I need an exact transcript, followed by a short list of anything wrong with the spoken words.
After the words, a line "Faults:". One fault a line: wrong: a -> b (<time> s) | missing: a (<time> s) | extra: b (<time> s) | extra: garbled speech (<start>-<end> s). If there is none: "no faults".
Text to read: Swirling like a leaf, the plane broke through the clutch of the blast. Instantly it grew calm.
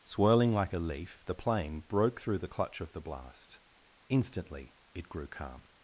Swirling like a leaf, the plane broke through the clutch of the blast. Instantly it grew calm.
Faults:
no faults